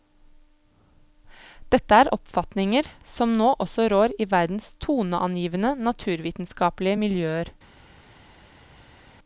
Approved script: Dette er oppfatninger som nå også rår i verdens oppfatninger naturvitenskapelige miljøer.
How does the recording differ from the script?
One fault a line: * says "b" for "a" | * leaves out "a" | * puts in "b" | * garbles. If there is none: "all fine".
* says "toneangivende" for "oppfatninger"